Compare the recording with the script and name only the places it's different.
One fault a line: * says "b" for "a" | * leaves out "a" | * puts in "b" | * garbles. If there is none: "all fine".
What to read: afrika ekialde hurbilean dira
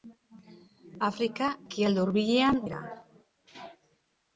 all fine